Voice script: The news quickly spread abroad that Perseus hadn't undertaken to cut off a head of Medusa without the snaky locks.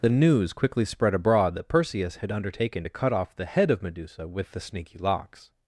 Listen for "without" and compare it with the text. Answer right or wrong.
wrong